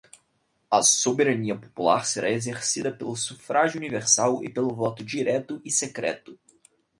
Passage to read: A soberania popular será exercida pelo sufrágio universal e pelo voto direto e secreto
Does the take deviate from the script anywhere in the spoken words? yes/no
no